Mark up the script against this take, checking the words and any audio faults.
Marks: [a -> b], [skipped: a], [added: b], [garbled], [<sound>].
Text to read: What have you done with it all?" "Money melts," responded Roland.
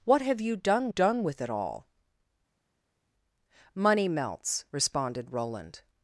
What have you done [added: done] with it all?" "Money melts," responded Roland.